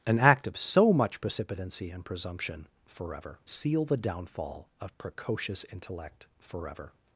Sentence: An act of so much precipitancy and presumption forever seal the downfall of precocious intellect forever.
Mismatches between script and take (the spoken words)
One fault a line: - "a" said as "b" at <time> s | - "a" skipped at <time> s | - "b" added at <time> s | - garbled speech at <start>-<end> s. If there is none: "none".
none